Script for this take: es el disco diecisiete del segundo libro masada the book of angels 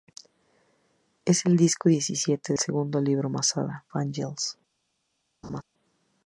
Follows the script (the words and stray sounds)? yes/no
no